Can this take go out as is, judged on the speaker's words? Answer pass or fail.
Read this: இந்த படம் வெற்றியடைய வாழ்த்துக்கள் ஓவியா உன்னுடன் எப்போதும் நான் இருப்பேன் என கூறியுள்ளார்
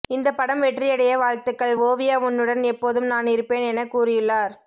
pass